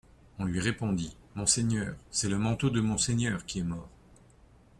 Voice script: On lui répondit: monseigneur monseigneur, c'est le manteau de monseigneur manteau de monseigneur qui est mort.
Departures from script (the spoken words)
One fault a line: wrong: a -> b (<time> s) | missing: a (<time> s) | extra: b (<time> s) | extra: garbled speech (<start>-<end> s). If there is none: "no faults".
missing: monseigneur (1.9 s)
missing: manteau de monseigneur (3.5 s)